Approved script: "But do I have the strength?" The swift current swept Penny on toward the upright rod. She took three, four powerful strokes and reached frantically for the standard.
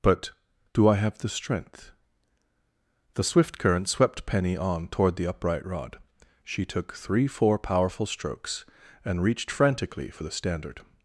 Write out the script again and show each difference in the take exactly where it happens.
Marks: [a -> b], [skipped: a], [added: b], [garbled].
"But do I have the strength?" The swift current swept Penny on toward the upright rod. She took three, four powerful strokes and reached frantically for the standard.